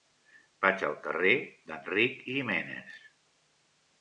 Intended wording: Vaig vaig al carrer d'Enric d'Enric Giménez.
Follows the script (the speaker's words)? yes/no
no